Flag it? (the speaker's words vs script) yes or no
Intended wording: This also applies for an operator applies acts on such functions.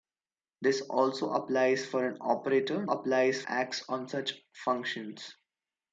no